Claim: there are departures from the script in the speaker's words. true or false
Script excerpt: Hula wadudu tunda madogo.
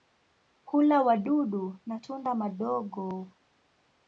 true